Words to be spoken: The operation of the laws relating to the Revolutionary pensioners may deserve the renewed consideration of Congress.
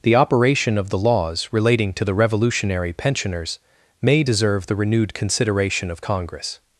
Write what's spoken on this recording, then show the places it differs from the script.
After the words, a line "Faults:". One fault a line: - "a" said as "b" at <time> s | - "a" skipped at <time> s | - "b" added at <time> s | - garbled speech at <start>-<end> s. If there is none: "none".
The operation of the laws relating to the Revolutionary pensioners may deserve the renewed consideration of Congress.
Faults:
none